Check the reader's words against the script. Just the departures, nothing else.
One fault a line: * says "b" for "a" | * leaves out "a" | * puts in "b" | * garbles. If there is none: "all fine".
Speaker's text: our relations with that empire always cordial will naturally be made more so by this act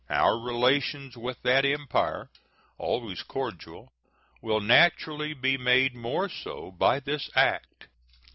all fine